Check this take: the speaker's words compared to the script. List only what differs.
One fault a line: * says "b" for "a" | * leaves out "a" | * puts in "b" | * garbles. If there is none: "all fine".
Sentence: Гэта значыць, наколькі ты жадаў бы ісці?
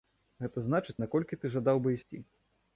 all fine